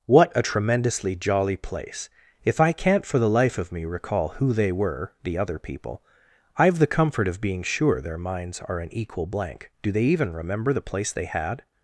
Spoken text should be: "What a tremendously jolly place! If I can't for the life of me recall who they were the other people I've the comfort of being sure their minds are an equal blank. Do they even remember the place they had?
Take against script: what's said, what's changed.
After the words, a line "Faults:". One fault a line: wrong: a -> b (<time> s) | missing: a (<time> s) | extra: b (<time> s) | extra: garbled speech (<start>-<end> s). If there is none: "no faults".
"What a tremendously jolly place! If I can't for the life of me recall who they were the other people I've the comfort of being sure their minds are an equal blank. Do they even remember the place they had?
Faults:
no faults